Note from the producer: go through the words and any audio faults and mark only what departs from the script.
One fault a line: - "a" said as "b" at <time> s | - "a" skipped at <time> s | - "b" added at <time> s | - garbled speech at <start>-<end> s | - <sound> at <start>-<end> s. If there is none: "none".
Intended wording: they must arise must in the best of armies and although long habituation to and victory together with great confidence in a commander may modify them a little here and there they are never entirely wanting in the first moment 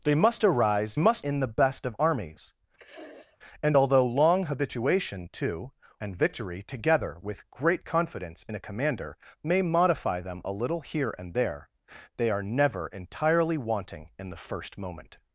- sniff at 2.8-3.4 s